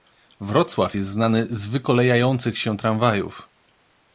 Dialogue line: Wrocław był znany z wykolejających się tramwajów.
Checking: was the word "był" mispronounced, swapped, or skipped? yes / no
yes